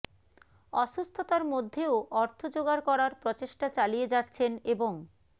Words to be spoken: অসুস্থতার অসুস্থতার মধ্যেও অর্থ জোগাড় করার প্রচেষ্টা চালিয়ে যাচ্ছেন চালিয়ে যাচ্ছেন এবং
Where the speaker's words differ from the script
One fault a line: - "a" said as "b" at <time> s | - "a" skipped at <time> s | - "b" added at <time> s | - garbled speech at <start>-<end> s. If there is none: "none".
- "অসুস্থতার" skipped at 1.4 s
- "চালিয়ে যাচ্ছেন" skipped at 4.5 s